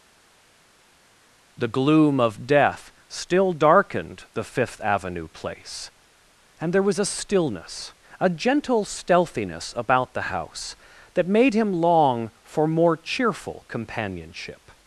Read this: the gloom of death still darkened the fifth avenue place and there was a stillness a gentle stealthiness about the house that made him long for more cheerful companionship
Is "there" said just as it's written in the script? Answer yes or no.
yes